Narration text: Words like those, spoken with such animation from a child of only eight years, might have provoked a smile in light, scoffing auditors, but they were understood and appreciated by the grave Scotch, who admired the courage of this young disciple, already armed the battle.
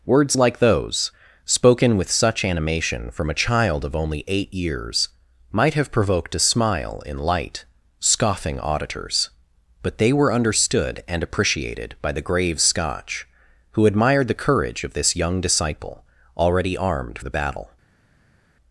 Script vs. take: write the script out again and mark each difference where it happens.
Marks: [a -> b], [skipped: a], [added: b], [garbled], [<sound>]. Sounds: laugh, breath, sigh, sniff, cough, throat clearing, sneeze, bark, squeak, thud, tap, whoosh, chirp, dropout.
Words like those, spoken with such animation from a child of only eight years, might have provoked a smile in light, scoffing auditors, but they were understood and appreciated by the grave Scotch, who admired the courage of this young disciple, already armed the battle.